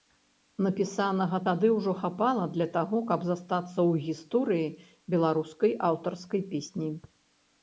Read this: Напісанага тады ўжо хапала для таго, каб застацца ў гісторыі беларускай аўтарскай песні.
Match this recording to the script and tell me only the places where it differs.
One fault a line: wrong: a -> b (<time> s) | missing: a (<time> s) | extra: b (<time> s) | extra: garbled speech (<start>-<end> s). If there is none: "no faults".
no faults